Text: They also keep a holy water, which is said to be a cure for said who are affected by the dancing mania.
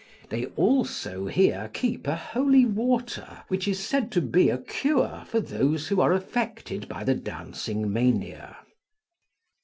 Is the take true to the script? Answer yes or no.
no